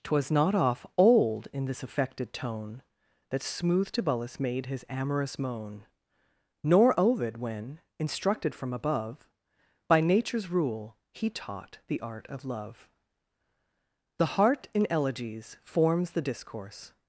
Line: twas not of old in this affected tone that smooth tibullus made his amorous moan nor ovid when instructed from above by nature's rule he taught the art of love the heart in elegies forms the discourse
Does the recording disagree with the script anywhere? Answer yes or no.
yes